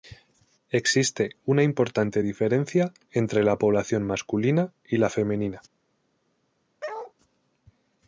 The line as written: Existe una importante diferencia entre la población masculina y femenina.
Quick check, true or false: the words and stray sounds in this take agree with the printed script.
false